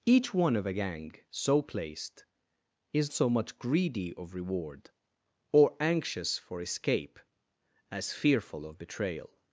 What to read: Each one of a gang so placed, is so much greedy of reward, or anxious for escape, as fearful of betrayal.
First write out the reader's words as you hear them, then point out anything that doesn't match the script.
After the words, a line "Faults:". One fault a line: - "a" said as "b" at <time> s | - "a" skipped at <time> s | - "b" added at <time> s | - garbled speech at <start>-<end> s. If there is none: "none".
Each one of a gang so placed, is so much greedy of reward, or anxious for escape, as fearful of betrayal.
Faults:
none